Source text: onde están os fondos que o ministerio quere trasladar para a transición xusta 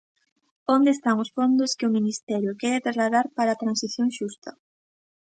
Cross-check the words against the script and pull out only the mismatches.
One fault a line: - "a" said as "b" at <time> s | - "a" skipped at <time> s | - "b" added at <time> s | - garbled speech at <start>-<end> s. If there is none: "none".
none